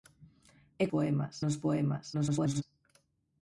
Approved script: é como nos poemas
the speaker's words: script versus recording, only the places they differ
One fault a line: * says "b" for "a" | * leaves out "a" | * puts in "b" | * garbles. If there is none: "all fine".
* says "poemas" for "como"
* garbles